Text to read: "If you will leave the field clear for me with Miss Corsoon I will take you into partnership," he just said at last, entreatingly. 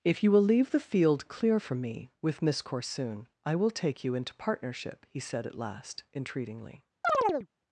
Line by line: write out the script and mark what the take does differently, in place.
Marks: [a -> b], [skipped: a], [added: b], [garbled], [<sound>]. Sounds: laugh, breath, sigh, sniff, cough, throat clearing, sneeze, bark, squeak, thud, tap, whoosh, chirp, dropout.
"If you will leave the field clear for me with Miss Corsoon I will take you into partnership," he [skipped: just] said at last, entreatingly. [chirp]